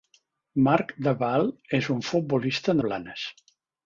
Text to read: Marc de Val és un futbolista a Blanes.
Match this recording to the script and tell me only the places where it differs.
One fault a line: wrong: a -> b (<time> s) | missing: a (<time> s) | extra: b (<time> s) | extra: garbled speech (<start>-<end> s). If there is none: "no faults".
no faults